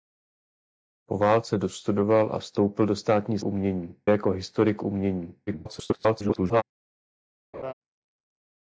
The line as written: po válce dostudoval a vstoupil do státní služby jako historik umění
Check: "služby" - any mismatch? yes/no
yes